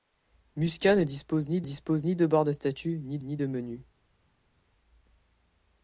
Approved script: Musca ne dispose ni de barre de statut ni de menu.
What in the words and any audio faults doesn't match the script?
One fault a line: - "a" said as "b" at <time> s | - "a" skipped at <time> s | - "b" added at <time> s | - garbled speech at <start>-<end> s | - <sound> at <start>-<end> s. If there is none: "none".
- "dispose ni" added at 1.6 s
- "ni" added at 3.2 s